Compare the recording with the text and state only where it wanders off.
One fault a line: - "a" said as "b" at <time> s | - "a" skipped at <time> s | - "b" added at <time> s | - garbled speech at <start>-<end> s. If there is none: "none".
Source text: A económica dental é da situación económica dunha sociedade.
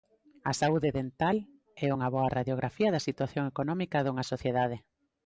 - "económica" said as "saúde" at 0.6 s
- "unha boa radiografía" added at 1.9 s